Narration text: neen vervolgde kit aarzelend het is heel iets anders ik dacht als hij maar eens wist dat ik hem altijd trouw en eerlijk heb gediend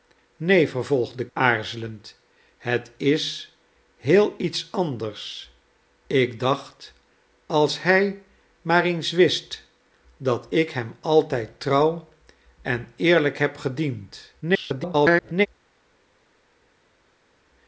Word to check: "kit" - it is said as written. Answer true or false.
false